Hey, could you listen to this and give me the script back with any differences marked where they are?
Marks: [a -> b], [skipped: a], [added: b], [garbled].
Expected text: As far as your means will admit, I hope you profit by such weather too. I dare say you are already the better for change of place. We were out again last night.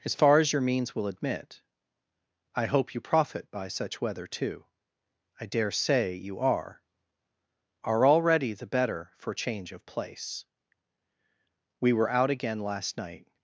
As far as your means will admit, I hope you profit by such weather too. I dare say you are [added: are] already the better for change of place. We were out again last night.